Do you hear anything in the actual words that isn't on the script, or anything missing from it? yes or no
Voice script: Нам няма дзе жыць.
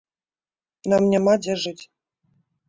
no